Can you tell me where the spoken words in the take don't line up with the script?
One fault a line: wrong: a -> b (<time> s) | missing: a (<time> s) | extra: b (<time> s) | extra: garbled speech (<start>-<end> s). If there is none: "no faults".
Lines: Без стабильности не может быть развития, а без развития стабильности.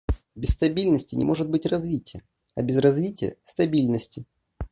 no faults